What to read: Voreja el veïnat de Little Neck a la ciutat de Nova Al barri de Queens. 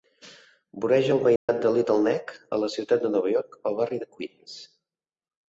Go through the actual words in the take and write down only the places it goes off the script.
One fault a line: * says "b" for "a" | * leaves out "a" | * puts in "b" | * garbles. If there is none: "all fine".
* puts in "York"